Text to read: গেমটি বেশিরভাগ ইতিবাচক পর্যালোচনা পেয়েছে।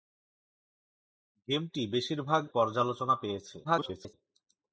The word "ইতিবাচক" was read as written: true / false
false